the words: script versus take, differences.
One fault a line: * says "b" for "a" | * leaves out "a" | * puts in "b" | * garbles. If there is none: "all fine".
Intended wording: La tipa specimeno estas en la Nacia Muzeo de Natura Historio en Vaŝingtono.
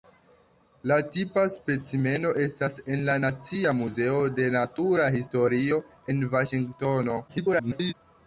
* garbles